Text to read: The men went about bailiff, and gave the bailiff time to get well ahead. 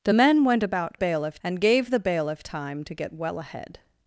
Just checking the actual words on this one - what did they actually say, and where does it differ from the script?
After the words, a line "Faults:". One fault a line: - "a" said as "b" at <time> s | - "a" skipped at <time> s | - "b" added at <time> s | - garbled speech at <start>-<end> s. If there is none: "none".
The men went about bailiff, and gave the bailiff time to get well ahead.
Faults:
none